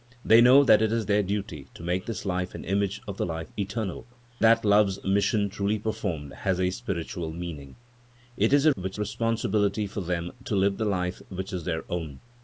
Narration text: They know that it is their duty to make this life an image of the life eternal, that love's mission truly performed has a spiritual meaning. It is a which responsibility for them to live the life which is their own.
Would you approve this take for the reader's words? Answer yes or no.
yes